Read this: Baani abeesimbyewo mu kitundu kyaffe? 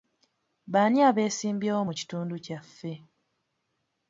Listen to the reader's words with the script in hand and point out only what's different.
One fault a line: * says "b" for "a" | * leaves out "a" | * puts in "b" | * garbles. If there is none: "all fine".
all fine